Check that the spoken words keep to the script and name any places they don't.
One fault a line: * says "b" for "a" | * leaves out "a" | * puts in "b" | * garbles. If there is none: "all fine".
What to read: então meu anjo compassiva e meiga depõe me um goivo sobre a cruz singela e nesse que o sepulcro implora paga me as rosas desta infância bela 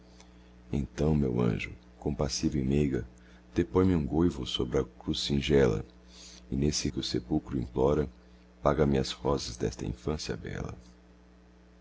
all fine